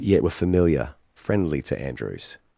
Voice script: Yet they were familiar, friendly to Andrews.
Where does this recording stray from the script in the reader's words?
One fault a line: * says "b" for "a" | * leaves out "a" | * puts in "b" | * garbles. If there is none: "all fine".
* leaves out "they"